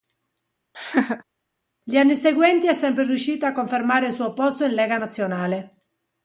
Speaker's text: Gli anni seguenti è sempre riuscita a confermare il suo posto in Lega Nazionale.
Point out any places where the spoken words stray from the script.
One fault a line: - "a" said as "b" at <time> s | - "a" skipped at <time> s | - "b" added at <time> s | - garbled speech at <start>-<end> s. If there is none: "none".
none